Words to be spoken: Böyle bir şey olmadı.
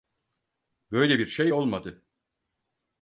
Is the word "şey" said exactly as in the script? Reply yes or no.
yes